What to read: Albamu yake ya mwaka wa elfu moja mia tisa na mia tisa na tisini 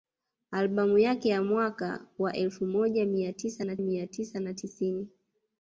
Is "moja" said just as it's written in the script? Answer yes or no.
yes